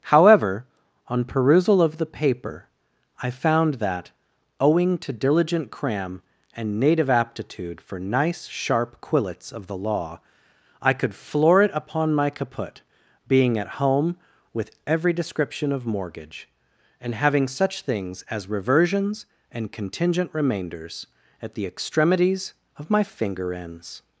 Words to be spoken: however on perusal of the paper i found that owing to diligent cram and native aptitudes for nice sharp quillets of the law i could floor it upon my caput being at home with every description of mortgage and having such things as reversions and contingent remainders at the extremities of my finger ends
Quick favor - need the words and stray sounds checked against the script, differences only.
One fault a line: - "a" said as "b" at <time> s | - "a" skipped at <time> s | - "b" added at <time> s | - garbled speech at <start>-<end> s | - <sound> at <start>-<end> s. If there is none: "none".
- "aptitudes" said as "aptitude" at 7.1 s